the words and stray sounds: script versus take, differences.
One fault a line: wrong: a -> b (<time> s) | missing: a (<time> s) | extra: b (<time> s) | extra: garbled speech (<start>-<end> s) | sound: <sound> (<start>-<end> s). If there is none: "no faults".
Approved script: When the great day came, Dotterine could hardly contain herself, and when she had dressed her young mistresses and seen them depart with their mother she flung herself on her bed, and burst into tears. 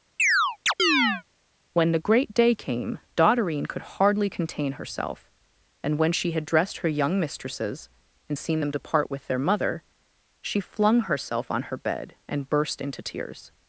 sound: chirp (0.2-1.2 s)